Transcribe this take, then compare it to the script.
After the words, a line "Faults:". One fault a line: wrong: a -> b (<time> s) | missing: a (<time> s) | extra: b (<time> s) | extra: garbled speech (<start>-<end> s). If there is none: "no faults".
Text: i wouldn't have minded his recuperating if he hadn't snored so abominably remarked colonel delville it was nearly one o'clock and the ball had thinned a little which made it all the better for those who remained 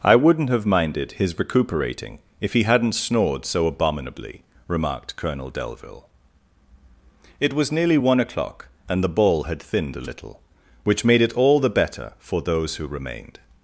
i wouldn't have minded his recuperating if he hadn't snored so abominably remarked colonel delville it was nearly one o'clock and the ball had thinned a little which made it all the better for those who remained
Faults:
no faults